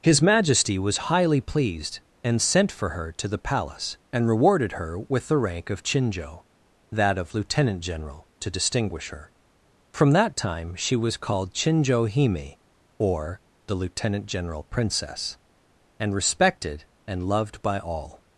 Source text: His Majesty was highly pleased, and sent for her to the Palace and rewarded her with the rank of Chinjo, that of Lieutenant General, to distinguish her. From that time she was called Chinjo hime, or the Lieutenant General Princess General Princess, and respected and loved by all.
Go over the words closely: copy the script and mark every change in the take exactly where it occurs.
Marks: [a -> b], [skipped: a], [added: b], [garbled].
His Majesty was highly pleased, and sent for her to the Palace and rewarded her with the rank of Chinjo, that of Lieutenant General, to distinguish her. From that time she was called Chinjo hime, or the Lieutenant General Princess [skipped: General Princess,] and respected and loved by all.